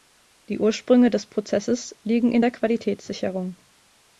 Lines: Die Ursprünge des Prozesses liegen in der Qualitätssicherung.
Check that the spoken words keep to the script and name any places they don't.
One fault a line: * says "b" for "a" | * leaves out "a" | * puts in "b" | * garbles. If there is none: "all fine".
all fine